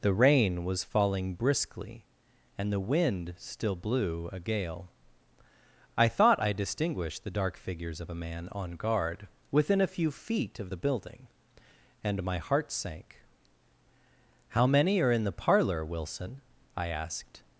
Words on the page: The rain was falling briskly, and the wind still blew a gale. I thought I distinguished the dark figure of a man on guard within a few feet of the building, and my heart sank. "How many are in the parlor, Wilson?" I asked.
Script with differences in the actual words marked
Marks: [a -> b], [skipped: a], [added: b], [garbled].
The rain was falling briskly, and the wind still blew a gale. I thought I distinguished the dark [figure -> figures] of a man on guard within a few feet of the building, and my heart sank. "How many are in the parlor, Wilson?" I asked.